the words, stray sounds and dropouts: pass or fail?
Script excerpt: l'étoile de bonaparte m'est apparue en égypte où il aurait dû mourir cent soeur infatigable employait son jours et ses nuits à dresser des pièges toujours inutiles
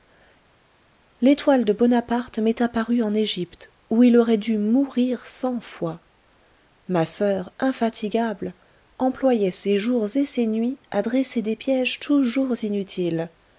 fail